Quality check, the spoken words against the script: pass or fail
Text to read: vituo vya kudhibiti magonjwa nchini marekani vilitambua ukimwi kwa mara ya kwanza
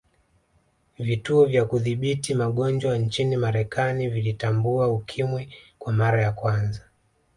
pass